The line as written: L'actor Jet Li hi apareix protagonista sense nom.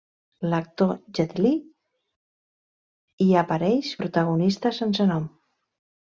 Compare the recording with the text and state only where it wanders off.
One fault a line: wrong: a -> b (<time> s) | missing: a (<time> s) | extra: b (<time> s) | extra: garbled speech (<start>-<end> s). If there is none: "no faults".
no faults